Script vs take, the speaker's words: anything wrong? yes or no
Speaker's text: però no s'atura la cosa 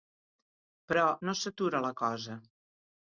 no